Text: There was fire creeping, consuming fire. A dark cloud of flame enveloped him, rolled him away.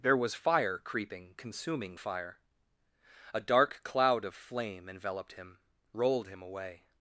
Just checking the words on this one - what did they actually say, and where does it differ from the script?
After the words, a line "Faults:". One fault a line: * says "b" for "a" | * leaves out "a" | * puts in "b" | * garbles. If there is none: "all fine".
There was fire creeping, consuming fire. A dark cloud of flame enveloped him, rolled him away.
Faults:
all fine